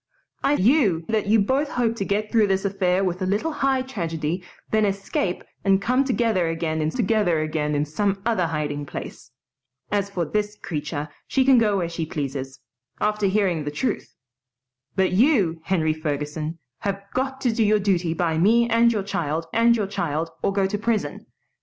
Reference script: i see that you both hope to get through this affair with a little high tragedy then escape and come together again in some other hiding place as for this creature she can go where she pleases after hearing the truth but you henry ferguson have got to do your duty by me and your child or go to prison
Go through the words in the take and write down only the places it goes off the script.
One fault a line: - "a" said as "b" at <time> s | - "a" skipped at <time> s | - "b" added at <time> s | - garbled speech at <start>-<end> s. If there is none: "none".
- "see" said as "you" at 0.6 s
- "together again in" added at 6.9 s
- "and your child" added at 19.5 s